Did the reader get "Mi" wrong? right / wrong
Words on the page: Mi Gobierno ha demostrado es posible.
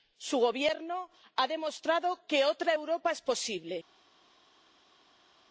wrong